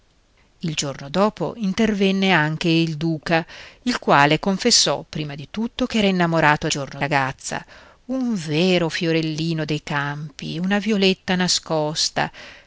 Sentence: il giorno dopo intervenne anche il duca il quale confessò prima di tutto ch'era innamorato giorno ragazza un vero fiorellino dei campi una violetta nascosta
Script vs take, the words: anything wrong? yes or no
no